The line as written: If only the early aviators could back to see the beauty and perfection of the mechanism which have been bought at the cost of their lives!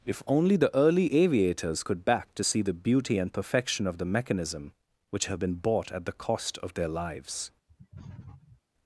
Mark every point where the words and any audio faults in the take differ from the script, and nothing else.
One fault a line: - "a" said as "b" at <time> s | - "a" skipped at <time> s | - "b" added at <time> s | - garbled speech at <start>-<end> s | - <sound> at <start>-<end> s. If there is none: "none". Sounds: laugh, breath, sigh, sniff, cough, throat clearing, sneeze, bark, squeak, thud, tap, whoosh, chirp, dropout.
- sniff at 7.7-8.6 s